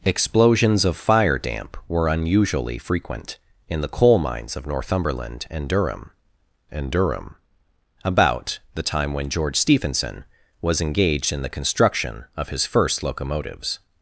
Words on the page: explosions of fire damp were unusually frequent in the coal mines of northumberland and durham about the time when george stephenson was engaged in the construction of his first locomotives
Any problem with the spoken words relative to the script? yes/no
yes